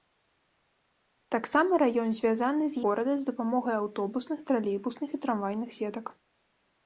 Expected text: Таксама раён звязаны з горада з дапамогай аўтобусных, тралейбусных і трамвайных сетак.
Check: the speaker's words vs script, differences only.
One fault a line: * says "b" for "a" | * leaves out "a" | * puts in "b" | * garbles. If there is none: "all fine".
all fine